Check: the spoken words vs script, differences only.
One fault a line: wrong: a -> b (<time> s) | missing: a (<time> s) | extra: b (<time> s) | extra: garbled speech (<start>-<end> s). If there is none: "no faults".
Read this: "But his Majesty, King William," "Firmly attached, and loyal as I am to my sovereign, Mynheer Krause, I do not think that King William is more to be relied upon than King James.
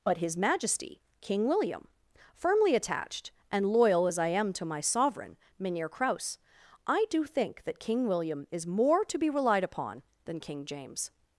missing: not (7.3 s)